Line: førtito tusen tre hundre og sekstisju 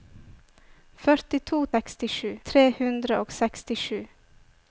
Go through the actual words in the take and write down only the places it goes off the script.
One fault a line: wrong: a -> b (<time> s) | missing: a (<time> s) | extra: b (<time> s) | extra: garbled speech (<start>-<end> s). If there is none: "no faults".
wrong: tusen -> sekstisju (1.7 s)